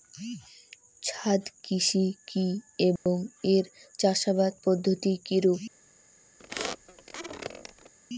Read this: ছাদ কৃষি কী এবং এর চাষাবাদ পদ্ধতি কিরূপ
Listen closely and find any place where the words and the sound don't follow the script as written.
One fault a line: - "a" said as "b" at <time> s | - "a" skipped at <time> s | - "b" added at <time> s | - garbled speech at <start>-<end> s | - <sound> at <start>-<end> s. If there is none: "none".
- dropout at 3.0-3.1 s
- squeak at 6.4-7.9 s